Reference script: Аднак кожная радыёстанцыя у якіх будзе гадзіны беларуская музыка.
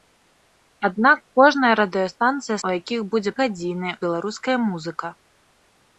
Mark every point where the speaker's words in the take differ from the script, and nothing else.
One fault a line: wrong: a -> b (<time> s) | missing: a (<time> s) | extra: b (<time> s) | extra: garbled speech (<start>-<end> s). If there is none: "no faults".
no faults